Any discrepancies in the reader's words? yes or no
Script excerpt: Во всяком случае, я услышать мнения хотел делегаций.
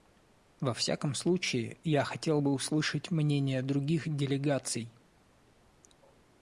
yes